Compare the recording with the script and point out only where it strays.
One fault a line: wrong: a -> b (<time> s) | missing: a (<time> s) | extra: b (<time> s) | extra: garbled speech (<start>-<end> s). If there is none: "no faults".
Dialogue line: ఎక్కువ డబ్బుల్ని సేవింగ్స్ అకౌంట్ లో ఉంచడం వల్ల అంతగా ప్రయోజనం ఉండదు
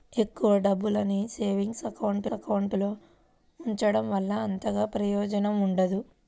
extra: అకౌంట్ (2.3 s)